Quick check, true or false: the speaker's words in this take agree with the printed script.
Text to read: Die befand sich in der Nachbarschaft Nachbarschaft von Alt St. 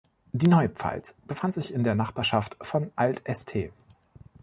false